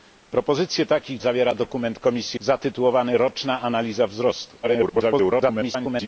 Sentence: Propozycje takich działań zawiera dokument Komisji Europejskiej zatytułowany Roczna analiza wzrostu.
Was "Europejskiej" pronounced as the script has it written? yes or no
no